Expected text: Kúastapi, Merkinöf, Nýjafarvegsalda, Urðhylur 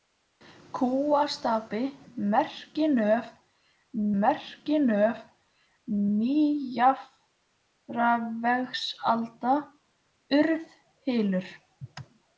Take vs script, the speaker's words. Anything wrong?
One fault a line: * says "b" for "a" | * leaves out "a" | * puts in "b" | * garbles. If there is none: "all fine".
* puts in "Merkinöf"